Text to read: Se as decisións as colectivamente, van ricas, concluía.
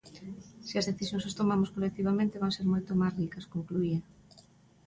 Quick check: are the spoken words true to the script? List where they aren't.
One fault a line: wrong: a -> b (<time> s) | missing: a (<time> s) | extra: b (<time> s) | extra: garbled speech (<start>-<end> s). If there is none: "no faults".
extra: tomamos (1.4 s)
extra: ser moito máis (2.6 s)